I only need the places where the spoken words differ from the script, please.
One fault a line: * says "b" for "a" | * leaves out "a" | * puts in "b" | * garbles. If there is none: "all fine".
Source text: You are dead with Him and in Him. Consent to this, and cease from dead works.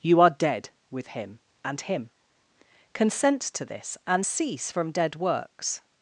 * leaves out "in"